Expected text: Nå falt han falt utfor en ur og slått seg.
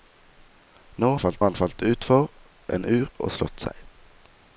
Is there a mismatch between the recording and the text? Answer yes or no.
no